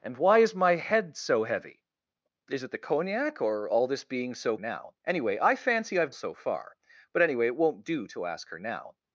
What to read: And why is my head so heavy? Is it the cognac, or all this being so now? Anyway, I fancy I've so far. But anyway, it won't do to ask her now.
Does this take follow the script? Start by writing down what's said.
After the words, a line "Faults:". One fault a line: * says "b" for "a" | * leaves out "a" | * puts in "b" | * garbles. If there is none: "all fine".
And why is my head so heavy? Is it the cognac, or all this being so now? Anyway, I fancy I've so far. But anyway, it won't do to ask her now.
Faults:
all fine